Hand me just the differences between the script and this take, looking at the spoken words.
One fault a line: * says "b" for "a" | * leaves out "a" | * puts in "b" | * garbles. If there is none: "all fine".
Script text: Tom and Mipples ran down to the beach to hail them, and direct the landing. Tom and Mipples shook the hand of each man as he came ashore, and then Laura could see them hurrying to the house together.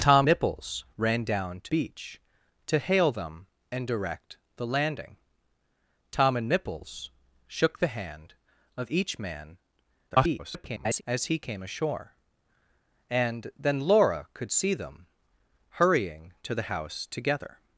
* leaves out "and"
* leaves out "the"
* garbles